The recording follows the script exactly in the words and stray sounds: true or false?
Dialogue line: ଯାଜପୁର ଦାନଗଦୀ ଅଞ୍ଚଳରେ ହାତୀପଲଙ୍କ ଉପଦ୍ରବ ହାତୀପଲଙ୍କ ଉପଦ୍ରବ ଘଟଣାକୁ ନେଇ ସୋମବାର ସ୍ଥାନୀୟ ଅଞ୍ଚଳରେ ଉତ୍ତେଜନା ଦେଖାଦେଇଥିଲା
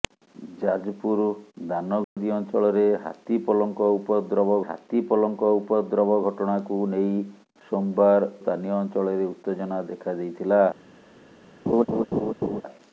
false